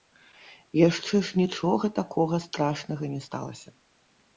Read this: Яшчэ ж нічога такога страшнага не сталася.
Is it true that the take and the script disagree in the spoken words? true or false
false